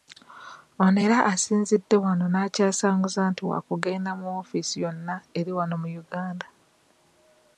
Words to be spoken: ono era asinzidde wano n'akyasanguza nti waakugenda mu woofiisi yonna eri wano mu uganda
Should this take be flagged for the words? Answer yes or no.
no